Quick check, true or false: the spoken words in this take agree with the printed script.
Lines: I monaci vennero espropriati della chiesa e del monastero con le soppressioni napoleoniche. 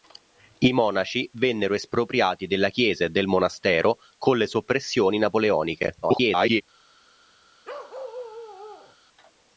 false